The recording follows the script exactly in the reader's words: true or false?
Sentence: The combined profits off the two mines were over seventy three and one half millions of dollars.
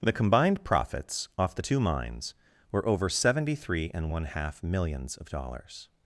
true